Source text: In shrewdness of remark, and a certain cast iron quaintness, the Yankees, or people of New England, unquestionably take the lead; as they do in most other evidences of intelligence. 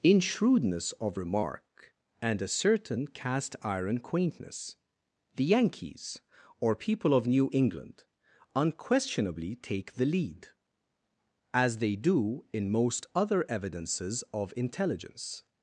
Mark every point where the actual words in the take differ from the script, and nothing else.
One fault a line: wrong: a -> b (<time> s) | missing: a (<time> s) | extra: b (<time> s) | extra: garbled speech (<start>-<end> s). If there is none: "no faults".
no faults